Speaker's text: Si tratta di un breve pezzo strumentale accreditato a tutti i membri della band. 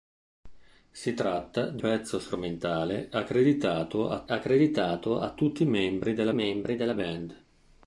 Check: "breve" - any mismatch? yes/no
yes